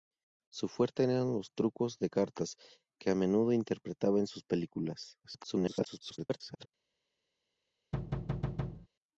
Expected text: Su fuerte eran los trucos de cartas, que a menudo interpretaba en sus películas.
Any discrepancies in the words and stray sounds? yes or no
yes